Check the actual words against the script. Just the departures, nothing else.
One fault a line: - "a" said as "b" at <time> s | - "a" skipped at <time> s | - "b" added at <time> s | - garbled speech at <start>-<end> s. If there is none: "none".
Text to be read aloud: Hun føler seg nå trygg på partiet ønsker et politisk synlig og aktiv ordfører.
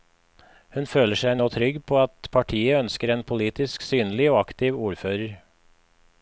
- "at" added at 2.0 s
- "et" said as "en" at 3.2 s